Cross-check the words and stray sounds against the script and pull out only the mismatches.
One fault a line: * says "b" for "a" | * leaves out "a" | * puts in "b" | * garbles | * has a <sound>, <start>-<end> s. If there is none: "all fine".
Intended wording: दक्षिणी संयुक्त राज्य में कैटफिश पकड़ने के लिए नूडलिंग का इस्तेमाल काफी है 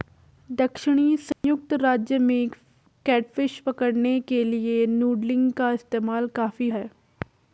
* has a dropout, 1.3-1.4 s